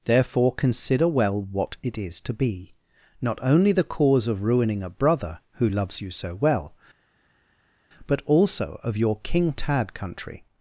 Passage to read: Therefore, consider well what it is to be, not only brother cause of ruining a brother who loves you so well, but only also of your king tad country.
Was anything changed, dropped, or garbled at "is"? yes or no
no